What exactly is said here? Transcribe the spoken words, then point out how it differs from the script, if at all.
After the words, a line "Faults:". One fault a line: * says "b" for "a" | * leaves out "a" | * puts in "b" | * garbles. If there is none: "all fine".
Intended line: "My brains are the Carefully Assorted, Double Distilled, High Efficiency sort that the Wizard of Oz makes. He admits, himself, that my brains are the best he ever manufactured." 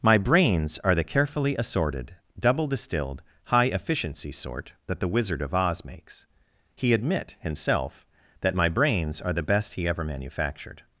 "My brains are the Carefully Assorted, Double Distilled, High Efficiency sort that the Wizard of Oz makes. He admit, himself, that my brains are the best he ever manufactured."
Faults:
* says "admit" for "admits"